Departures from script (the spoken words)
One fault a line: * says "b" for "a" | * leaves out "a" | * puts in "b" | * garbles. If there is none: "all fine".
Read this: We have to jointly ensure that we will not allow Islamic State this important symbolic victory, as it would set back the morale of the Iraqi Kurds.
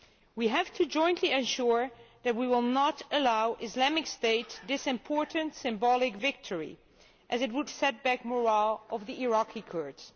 all fine